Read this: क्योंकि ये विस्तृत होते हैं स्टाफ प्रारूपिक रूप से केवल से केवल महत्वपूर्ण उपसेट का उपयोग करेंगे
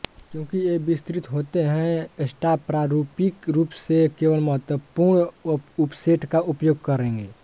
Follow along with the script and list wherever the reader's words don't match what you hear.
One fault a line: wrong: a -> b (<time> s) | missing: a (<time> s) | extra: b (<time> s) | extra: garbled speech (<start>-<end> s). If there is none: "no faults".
missing: से केवल (4.4 s)